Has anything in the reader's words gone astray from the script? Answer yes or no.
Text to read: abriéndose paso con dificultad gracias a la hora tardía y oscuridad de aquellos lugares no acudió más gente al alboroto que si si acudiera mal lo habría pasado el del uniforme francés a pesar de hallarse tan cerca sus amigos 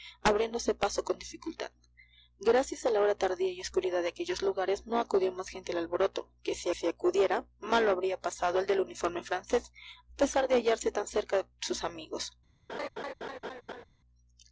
no